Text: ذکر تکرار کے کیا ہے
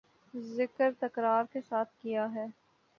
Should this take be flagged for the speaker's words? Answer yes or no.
yes